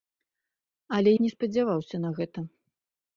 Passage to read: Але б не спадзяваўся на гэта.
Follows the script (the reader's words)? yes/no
yes